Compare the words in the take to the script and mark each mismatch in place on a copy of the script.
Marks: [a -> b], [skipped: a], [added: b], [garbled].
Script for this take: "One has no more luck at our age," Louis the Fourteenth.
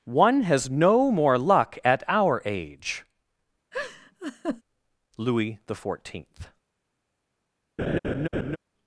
"One has no more luck at our age," Louis the Fourteenth.